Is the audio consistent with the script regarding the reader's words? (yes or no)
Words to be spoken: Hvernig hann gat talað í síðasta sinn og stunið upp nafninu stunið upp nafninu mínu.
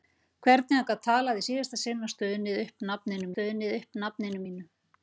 yes